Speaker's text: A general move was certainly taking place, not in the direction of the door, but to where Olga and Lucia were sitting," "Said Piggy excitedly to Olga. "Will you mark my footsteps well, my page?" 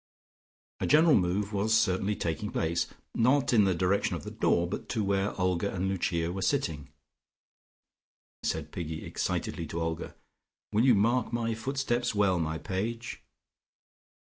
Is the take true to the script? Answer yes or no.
yes